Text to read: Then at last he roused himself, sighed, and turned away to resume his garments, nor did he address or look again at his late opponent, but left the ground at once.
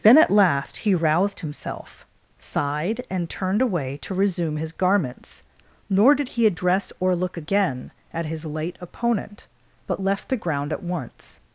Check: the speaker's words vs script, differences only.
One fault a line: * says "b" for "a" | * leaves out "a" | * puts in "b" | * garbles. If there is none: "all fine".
all fine